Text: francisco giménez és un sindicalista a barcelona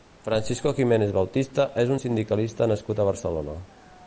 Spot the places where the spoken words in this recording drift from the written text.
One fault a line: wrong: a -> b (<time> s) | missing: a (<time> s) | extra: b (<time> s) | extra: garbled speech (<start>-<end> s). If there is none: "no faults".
extra: bautista (1.2 s)
extra: nascut (2.7 s)